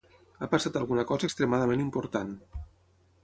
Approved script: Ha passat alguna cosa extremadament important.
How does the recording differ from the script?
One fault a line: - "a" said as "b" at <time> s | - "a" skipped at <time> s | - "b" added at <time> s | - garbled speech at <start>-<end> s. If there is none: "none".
none